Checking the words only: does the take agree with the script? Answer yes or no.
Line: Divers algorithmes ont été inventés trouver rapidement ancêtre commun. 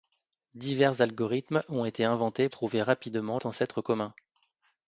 yes